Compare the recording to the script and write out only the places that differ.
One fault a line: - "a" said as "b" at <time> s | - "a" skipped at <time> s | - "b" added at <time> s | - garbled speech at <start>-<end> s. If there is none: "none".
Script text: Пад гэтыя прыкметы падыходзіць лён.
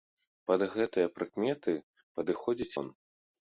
none